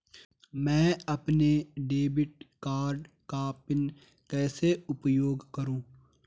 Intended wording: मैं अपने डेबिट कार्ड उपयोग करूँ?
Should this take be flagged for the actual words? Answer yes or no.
yes